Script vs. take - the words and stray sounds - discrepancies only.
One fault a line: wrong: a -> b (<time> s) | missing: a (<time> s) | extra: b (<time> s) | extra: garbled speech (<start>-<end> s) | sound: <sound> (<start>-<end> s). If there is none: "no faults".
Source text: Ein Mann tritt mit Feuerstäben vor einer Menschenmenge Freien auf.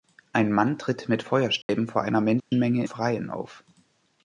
sound: dropout (1.6-1.7 s)
sound: dropout (2.4-2.5 s)